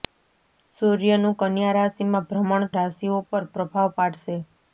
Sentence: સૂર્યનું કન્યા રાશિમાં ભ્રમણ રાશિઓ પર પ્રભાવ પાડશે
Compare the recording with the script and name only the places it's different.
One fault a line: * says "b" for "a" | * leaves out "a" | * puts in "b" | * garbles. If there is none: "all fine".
all fine